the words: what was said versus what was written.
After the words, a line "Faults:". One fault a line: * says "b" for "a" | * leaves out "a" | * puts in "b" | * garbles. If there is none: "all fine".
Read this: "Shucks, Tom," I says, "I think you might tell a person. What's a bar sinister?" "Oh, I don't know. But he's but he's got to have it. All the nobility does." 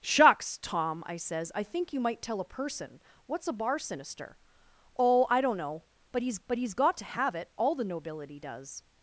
"Shucks, Tom," I says, "I think you might tell a person. What's a bar sinister?" "Oh, I don't know. But he's but he's got to have it. All the nobility does."
Faults:
all fine